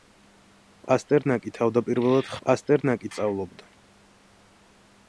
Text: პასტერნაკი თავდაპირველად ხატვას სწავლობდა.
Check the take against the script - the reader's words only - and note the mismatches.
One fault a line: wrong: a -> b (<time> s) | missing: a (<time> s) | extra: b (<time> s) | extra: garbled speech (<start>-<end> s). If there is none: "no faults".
wrong: ხატვას -> პასტერნაკი (2.5 s)